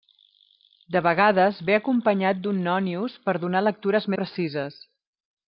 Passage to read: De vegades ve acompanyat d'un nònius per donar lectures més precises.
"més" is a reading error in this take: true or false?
true